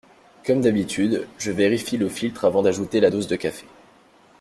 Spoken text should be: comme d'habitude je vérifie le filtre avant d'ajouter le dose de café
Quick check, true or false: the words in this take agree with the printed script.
false